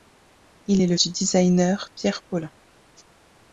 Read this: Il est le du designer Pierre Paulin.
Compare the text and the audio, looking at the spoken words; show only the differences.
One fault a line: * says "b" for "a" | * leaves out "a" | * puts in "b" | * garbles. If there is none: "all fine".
all fine